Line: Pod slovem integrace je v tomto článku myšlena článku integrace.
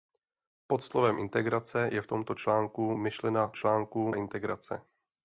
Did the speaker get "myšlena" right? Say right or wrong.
right